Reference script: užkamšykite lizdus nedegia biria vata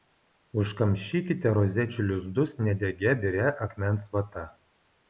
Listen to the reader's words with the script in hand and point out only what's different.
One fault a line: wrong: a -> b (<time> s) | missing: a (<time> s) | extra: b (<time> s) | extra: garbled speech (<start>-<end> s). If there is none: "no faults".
extra: rozečių (1.6 s)
extra: akmens (3.7 s)